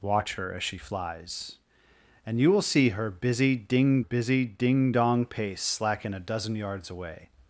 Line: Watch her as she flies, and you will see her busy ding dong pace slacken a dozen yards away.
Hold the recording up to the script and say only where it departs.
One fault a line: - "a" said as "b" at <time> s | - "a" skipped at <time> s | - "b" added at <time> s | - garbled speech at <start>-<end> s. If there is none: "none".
- "busy ding" added at 4.0 s